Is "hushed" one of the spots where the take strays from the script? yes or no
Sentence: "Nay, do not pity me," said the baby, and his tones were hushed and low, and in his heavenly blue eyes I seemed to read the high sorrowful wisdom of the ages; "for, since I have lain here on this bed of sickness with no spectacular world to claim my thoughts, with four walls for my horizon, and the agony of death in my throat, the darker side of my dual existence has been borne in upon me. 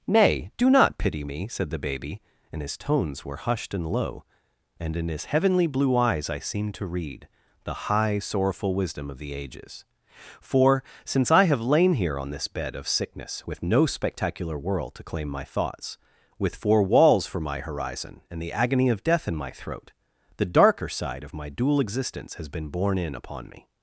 no